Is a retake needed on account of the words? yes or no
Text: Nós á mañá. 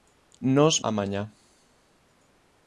no